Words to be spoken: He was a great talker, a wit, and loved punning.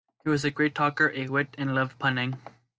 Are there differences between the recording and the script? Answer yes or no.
no